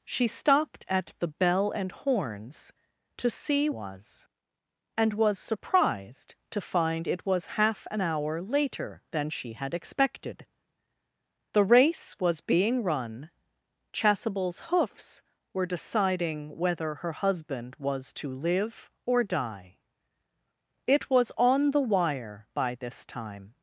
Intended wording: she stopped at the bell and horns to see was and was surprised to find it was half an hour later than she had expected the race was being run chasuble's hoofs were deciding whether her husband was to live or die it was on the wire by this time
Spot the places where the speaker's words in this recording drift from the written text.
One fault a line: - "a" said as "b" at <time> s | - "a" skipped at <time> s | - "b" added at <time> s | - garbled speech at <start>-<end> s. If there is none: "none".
none